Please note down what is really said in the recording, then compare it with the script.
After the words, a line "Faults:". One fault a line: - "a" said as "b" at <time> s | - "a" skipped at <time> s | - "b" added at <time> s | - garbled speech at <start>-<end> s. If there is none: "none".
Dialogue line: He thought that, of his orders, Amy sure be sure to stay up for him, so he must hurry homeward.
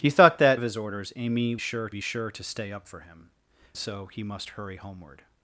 He thought that, of his orders, Amy sure be sure to stay up for him, so he must hurry homeward.
Faults:
none